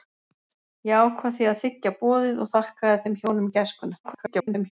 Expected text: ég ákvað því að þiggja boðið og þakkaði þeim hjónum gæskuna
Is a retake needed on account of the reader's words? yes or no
yes